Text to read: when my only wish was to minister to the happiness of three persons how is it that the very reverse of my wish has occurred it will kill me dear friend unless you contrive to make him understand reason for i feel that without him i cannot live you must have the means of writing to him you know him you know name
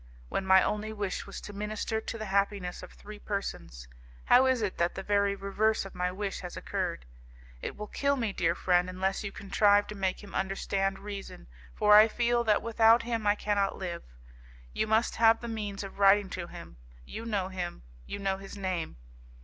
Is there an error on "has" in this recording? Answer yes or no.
no